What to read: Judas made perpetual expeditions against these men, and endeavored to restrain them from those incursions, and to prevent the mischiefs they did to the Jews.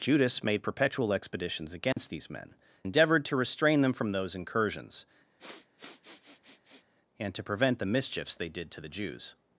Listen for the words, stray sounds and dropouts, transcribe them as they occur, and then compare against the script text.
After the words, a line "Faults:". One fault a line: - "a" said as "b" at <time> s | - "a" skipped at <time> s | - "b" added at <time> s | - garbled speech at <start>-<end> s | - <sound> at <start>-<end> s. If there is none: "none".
Judas made perpetual expeditions against these men, endeavored to restrain them from those incursions, and to prevent the mischiefs they did to the Jews.
Faults:
- dropout at 1.9-2.0 s
- "and" skipped at 2.5 s
- sniff at 5.4-6.9 s